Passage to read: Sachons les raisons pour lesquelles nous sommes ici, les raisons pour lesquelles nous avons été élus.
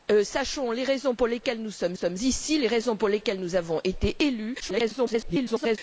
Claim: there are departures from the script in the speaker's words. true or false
true